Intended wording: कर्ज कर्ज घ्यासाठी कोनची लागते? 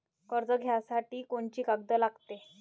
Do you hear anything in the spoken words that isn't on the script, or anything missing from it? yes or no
yes